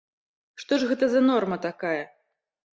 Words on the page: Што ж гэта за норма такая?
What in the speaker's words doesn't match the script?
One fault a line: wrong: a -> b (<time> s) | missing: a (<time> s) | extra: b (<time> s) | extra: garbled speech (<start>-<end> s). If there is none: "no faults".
no faults